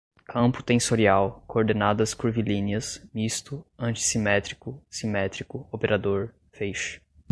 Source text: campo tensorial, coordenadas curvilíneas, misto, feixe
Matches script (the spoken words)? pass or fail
fail